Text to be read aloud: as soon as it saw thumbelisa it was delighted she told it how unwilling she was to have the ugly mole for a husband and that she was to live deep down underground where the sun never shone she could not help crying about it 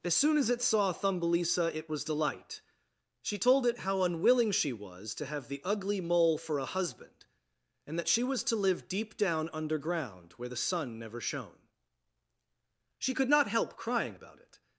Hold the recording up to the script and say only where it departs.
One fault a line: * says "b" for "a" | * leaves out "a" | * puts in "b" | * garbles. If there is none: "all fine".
* says "delight" for "delighted"